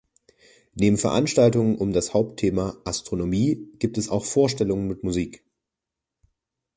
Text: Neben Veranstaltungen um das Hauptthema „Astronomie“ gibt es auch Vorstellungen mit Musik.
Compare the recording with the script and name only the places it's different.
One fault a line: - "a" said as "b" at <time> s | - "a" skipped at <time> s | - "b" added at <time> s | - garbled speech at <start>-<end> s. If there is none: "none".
none